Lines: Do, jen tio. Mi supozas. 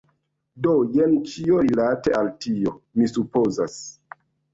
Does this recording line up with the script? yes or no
no